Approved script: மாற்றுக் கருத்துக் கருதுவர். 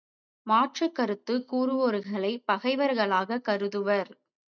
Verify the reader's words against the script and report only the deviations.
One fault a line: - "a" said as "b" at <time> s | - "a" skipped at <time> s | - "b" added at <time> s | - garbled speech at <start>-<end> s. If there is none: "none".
- "கூறுவோர்களைப் பகைவர்களாகக்" added at 1.5 s